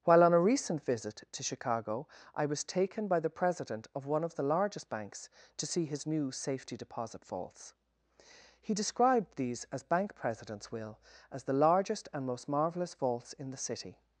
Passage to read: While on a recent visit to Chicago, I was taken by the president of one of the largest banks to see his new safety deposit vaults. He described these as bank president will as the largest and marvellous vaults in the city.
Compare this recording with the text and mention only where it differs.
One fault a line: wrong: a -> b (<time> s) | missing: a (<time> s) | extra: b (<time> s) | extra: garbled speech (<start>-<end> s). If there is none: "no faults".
wrong: president -> presidents (10.2 s)
extra: most (12.2 s)